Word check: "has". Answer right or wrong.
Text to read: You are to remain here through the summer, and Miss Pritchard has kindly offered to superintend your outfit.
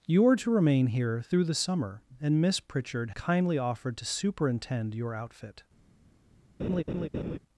wrong